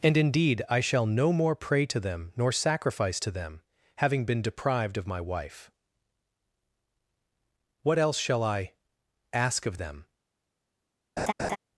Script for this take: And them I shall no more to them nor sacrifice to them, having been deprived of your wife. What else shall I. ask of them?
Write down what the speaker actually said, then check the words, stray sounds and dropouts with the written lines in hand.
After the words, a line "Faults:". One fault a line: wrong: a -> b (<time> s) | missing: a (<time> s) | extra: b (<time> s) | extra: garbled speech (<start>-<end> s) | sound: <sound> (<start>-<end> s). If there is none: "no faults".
And indeed I shall no more pray to them nor sacrifice to them, having been deprived of my wife. What else shall I. ask of them?
Faults:
wrong: them -> indeed (0.2 s)
extra: pray (1.6 s)
wrong: your -> my (5.1 s)
sound: laugh (11.2-11.6 s)